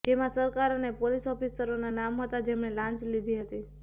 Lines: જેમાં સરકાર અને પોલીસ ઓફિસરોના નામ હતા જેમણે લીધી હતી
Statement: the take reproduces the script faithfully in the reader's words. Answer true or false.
false